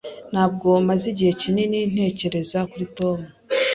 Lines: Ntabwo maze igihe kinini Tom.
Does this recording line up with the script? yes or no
no